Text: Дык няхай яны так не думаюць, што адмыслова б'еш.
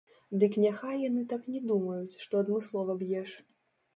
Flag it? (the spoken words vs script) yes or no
no